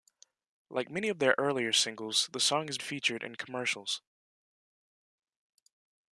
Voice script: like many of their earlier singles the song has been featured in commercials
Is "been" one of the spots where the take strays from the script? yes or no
yes